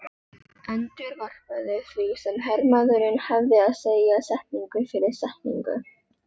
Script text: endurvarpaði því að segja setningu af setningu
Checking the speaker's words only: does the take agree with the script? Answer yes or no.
no